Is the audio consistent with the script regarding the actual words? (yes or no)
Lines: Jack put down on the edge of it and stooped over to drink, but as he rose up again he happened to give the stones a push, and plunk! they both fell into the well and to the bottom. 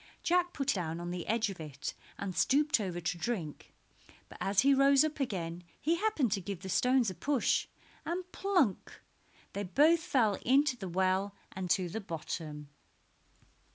yes